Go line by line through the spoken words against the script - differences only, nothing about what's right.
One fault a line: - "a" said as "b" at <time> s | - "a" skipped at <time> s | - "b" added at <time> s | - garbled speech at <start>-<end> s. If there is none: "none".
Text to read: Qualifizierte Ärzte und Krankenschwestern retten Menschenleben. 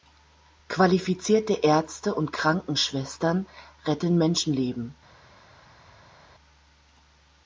none